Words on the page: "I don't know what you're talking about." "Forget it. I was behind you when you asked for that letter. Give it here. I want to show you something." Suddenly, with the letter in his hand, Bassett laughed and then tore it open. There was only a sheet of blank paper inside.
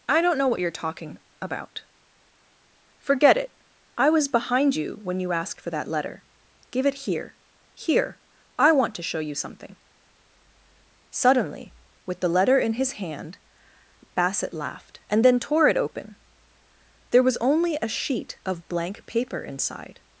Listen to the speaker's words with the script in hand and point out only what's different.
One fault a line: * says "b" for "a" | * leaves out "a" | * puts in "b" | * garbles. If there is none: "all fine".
* puts in "here"